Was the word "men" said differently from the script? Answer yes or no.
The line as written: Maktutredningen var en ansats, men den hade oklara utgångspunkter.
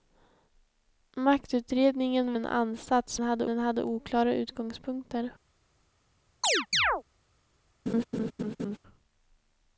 yes